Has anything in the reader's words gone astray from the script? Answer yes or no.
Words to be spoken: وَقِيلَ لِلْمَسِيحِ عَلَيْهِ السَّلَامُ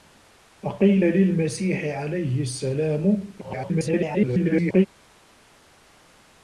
yes